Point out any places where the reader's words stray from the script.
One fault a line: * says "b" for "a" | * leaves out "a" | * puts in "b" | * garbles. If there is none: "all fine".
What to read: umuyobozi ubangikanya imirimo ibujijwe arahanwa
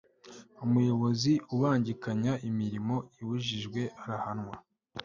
all fine